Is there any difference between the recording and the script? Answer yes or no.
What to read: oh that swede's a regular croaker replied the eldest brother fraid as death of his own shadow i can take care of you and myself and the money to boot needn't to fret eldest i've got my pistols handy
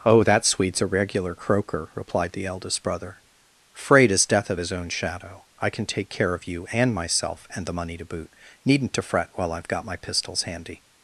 yes